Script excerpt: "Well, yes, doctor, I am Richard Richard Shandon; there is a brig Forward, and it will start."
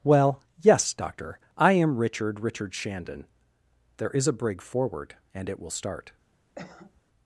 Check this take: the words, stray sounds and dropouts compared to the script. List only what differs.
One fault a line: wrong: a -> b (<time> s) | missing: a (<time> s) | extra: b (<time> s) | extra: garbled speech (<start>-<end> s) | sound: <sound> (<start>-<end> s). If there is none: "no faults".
sound: cough (6.6-7.0 s)